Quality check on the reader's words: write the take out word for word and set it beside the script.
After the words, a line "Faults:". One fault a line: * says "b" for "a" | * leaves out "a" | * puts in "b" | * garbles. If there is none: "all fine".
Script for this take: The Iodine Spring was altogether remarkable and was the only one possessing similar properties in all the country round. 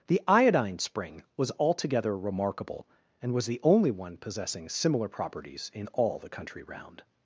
The Iodine Spring was altogether remarkable and was the only one possessing similar properties in all the country round.
Faults:
all fine